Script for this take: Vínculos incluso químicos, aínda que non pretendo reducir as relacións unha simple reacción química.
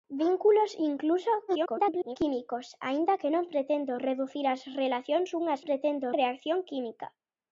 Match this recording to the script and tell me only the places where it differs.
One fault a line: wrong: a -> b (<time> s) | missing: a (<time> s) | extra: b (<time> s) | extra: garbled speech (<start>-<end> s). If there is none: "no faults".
extra: garbled speech (1.5-2.2 s)
wrong: simple -> pretendo (5.7 s)